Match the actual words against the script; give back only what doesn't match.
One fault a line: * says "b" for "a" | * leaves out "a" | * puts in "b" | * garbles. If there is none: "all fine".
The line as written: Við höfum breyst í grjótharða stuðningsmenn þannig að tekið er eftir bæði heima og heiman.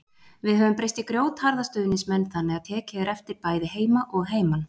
all fine